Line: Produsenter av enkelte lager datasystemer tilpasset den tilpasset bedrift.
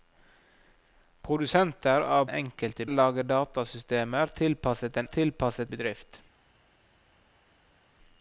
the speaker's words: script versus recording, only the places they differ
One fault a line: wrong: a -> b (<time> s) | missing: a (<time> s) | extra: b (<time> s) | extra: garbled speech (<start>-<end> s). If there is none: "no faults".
no faults